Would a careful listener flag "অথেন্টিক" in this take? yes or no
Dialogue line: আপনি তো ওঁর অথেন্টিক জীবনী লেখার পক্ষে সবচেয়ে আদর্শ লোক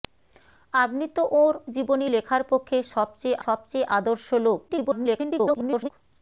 yes